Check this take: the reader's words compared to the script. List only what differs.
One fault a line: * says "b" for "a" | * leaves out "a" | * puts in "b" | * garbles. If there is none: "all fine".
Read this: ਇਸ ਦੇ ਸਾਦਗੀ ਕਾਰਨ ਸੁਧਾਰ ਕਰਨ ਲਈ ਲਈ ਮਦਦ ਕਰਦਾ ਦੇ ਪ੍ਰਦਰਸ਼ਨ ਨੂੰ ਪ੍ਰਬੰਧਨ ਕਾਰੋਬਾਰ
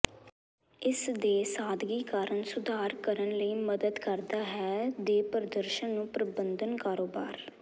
* leaves out "ਲਈ"
* puts in "ਹੈ"